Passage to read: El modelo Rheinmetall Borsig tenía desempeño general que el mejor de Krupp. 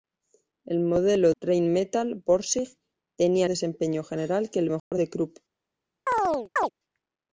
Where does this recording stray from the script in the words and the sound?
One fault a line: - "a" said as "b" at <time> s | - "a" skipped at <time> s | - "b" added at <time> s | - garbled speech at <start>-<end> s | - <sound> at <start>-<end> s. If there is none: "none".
- dropout at 4.8-4.9 s
- chirp at 6.1-6.7 s